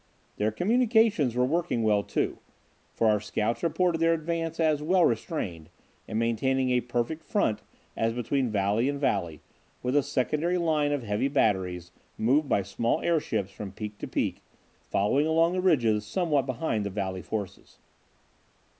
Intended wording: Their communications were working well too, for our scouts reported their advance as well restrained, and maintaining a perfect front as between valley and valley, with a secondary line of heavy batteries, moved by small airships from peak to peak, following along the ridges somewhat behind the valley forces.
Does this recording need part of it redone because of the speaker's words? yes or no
no